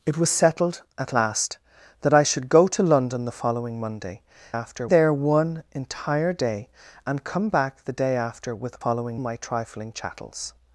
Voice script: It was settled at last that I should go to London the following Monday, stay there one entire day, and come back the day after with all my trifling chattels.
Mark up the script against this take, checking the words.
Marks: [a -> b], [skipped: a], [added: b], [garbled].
It was settled at last that I should go to London the following Monday, [stay -> after] there one entire day, and come back the day after with [all -> following] my trifling chattels.